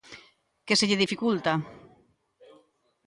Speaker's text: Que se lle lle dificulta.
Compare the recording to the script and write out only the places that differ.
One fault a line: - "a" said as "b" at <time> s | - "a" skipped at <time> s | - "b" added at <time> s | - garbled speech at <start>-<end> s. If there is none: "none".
- "lle" skipped at 1.0 s